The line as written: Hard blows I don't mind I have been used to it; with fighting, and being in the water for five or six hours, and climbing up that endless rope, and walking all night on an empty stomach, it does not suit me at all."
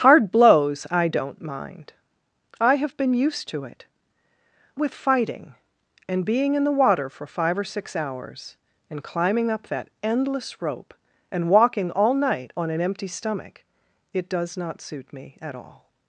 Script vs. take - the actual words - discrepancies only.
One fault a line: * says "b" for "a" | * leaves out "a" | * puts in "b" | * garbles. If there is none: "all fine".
all fine